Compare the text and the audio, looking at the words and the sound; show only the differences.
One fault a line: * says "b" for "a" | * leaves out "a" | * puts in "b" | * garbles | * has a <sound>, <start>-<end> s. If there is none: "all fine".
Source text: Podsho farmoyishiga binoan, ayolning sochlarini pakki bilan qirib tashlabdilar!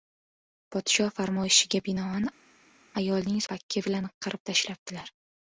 * leaves out "sochlarini"